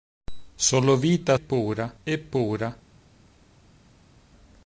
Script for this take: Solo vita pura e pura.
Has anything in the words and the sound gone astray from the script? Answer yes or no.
no